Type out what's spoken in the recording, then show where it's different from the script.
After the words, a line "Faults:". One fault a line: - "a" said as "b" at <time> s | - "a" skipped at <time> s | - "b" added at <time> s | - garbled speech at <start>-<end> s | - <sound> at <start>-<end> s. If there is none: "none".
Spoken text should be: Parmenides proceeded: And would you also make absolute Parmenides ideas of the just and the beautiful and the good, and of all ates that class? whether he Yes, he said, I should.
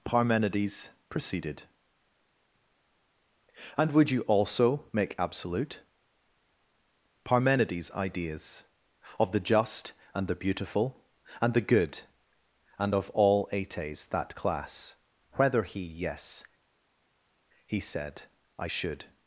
Parmenides proceeded: And would you also make absolute Parmenides ideas of the just and the beautiful and the good, and of all ates that class? whether he Yes, he said, I should.
Faults:
none